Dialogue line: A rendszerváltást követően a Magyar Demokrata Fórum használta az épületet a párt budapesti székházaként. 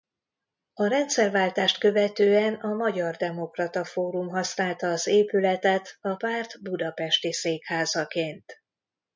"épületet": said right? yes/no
yes